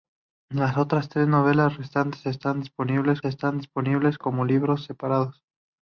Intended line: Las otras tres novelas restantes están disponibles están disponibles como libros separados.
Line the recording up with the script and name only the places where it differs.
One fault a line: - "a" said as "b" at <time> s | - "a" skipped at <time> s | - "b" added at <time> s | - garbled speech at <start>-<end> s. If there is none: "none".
none